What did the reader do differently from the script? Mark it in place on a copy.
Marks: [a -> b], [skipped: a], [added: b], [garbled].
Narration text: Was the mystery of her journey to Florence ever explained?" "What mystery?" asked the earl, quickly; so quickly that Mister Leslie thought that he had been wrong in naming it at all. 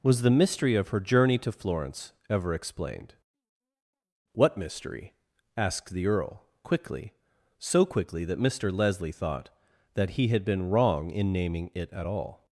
Was the mystery of her journey to Florence ever explained?" "What mystery?" asked the earl, quickly; so quickly that Mister Leslie thought that he had been wrong in naming it at all.